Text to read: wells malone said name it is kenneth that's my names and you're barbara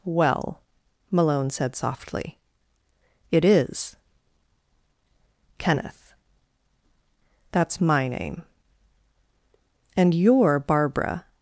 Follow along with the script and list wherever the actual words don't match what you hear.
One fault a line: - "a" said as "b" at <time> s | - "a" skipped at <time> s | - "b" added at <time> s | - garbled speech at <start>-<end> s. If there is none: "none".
- "wells" said as "well" at 0.0 s
- "name" said as "softly" at 1.7 s
- "names" said as "name" at 8.1 s